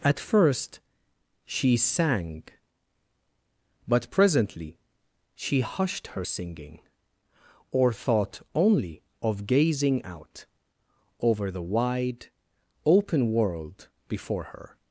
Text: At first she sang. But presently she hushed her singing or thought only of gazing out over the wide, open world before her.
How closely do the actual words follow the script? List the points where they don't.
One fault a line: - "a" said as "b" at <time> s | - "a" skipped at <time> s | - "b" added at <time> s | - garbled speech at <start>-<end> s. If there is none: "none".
none